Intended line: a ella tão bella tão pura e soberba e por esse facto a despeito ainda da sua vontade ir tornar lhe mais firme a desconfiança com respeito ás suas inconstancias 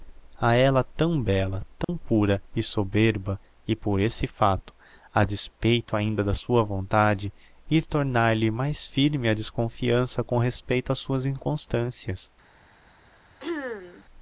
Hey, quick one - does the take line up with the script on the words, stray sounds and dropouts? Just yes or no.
no